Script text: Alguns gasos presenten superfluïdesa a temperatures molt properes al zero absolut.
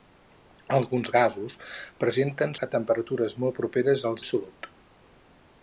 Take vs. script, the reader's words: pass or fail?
fail